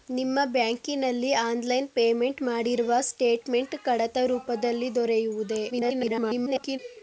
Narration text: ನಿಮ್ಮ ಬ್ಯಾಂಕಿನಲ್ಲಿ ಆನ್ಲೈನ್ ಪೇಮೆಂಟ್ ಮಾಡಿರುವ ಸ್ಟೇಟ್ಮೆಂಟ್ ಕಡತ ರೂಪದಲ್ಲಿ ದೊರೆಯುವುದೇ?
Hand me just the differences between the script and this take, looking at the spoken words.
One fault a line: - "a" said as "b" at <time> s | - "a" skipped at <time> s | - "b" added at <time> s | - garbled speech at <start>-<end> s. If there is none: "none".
- garbled speech at 5.7-6.8 s